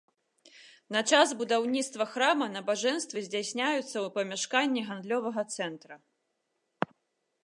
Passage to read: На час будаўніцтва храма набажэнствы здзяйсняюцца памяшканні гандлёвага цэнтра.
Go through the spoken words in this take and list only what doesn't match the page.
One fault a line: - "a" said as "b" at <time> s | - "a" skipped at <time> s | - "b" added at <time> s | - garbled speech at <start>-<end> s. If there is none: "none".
- "ў" added at 3.9 s